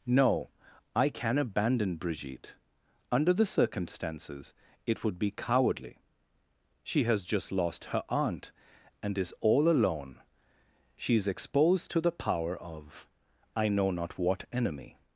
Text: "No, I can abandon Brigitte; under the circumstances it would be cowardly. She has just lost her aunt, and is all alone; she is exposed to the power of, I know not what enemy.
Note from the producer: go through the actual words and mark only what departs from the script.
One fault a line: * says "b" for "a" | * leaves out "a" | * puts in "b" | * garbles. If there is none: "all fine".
all fine